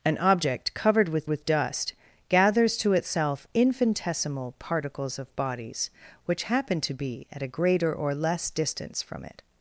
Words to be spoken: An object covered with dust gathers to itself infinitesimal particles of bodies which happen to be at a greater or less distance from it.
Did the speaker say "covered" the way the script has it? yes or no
yes